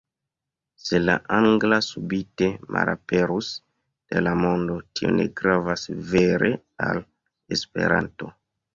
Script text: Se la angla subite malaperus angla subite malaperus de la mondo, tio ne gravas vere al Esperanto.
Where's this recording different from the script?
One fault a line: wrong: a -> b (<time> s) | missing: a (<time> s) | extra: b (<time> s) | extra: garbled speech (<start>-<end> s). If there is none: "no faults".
missing: angla subite malaperus (3.5 s)